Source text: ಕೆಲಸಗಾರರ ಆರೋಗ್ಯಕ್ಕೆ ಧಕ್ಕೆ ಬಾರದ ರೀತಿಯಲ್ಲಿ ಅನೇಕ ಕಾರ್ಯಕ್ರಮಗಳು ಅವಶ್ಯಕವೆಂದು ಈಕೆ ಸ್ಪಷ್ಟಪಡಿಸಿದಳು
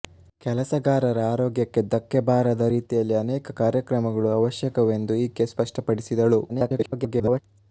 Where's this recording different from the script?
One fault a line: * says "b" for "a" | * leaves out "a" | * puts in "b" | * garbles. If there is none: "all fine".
* garbles